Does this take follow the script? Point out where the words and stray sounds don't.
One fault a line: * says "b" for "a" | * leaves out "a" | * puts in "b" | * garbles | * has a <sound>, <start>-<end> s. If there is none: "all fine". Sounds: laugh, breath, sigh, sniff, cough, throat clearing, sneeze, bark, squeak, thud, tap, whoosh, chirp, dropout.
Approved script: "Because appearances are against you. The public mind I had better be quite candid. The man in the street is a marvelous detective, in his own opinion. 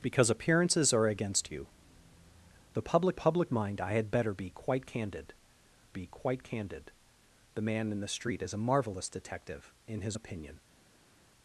* puts in "public"
* puts in "be quite candid"
* leaves out "own"